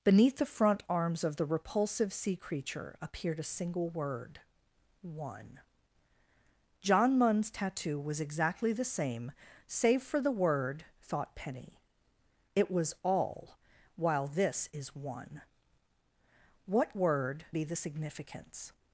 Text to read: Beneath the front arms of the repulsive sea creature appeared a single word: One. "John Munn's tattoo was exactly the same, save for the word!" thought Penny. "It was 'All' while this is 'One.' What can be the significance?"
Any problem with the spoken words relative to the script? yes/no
yes